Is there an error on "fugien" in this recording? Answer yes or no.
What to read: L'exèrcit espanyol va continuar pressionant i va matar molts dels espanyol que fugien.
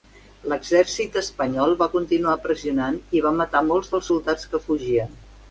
no